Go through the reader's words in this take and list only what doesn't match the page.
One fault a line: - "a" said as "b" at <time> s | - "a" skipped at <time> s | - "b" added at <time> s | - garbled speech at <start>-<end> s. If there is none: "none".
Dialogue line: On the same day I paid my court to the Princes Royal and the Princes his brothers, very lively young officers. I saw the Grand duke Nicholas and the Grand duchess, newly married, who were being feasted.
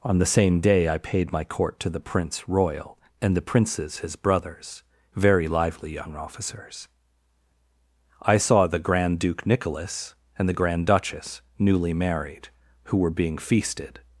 - "Princes" said as "Prince" at 2.0 s